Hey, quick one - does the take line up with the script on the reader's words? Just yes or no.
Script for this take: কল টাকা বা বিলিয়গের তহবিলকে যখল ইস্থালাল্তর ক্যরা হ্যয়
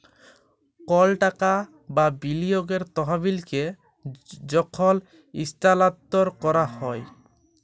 yes